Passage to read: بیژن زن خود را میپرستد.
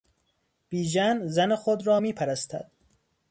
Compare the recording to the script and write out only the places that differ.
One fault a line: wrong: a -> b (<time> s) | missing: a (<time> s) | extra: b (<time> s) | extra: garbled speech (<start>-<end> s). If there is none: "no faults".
no faults